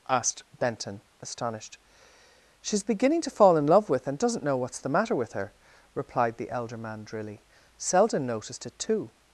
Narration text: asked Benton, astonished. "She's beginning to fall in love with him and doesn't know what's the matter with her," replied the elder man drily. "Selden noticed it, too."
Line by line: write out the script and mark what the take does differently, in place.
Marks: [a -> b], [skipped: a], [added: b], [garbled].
asked Benton, astonished. "She's beginning to fall in love with [skipped: him] and doesn't know what's the matter with her," replied the elder man drily. "Selden noticed it, too."